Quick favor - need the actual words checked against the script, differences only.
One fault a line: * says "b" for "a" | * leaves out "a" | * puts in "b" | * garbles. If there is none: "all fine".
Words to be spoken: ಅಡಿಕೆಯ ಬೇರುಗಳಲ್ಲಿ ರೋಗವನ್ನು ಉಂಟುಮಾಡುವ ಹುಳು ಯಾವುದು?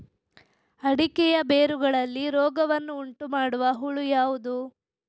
all fine